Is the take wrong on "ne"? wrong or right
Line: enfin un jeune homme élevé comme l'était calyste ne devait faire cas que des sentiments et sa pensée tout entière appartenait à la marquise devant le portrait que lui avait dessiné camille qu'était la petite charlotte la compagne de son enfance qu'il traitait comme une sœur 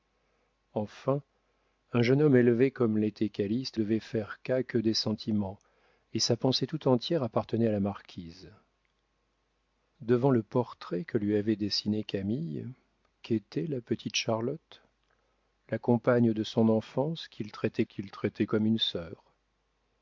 wrong